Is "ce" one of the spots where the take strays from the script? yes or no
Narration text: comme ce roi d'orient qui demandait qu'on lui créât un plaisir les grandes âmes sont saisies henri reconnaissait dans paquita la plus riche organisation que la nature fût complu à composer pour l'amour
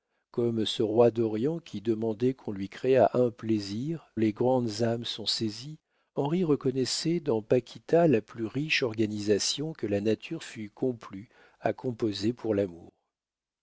no